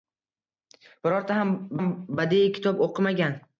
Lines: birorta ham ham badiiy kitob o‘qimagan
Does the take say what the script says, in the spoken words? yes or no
yes